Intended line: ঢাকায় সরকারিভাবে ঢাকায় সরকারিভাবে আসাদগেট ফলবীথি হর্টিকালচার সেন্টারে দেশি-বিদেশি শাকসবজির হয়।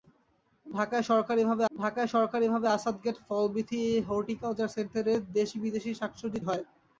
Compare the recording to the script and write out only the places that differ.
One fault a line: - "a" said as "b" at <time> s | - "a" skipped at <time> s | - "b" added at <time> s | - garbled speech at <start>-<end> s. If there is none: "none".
none